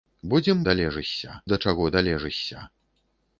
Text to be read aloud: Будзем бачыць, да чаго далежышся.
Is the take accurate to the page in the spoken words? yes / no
no